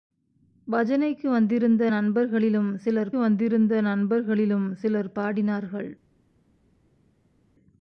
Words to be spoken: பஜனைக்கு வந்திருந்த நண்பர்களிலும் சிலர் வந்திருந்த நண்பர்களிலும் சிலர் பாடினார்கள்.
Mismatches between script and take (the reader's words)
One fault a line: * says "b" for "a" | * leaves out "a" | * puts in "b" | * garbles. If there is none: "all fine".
all fine